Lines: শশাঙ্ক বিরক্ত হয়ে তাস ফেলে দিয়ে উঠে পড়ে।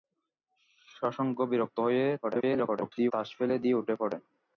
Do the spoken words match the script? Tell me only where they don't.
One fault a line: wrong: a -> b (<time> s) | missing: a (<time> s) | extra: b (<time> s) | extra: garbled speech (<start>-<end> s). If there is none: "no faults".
extra: garbled speech (2.2-3.1 s)